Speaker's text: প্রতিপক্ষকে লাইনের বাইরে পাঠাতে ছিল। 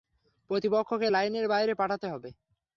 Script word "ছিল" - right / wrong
wrong